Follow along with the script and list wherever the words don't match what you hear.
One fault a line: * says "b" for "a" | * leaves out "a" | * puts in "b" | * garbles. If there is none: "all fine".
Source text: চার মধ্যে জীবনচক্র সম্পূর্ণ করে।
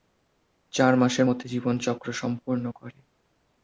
* puts in "মাসের"